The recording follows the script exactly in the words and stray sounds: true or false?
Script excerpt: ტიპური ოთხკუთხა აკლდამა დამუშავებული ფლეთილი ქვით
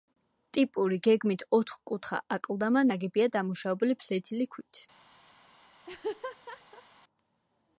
false